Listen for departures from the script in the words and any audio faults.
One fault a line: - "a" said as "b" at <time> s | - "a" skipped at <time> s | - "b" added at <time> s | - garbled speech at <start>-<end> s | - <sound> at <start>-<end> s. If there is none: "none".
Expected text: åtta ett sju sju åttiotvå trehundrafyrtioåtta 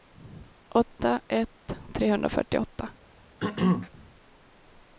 - "sju sju åttiotvå" skipped at 1.8 s
- throat clearing at 3.4-3.9 s